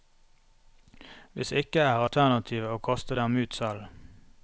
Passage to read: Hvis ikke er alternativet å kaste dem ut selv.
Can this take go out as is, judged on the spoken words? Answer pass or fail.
pass